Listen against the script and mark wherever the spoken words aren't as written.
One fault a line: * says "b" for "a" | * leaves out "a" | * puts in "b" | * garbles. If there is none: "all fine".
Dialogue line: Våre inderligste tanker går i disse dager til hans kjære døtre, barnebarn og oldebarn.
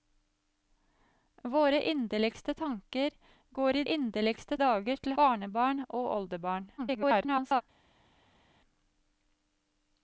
* says "inderligste" for "disse"
* leaves out "hans kjære døtre"
* garbles